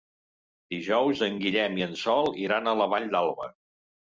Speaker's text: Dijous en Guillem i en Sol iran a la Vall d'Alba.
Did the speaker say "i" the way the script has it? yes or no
yes